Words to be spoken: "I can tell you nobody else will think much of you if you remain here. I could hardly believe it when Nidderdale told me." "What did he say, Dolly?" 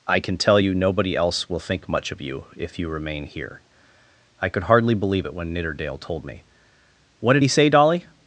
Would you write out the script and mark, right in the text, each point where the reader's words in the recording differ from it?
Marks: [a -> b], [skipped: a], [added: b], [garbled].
"I can tell you nobody else will think much of you if you remain here. I could hardly believe it when Nidderdale told me." "What did he say, Dolly?"